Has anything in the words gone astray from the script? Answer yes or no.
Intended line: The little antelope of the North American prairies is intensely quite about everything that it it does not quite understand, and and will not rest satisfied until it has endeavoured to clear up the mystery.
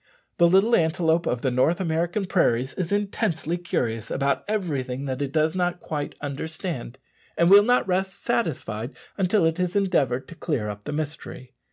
yes